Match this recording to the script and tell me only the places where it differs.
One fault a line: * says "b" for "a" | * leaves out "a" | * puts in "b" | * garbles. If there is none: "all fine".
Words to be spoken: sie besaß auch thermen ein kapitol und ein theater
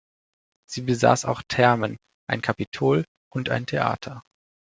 all fine